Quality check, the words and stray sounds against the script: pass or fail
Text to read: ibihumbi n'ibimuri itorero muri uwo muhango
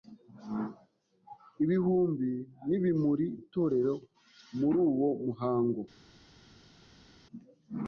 pass